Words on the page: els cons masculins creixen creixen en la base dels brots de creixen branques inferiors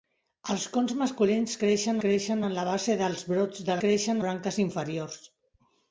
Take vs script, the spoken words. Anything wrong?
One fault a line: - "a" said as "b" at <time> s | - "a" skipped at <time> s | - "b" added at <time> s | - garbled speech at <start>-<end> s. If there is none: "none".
none